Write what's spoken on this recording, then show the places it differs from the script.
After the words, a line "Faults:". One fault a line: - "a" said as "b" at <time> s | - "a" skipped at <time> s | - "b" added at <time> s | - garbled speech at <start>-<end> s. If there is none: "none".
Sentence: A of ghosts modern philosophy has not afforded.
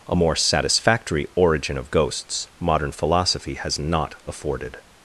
A more satisfactory origin of ghosts modern philosophy has not afforded.
Faults:
- "more satisfactory origin" added at 0.1 s